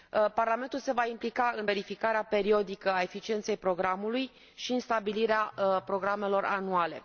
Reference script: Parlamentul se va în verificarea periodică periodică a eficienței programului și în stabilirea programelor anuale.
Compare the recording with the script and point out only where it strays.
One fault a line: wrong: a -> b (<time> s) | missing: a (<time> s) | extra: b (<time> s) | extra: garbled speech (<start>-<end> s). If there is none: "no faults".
extra: implica (1.1 s)
missing: periodică (2.9 s)